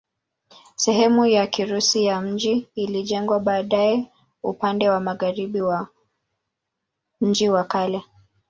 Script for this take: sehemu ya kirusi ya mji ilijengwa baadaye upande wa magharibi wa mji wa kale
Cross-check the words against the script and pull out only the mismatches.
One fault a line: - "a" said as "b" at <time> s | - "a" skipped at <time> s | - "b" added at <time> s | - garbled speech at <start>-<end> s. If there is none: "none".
none